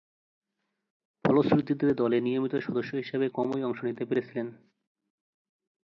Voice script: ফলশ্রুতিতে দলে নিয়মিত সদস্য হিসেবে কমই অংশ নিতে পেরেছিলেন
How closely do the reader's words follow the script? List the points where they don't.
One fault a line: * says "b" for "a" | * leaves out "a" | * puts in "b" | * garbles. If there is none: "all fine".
all fine